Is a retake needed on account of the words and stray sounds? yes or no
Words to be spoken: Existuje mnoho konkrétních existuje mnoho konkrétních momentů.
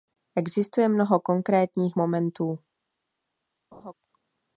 yes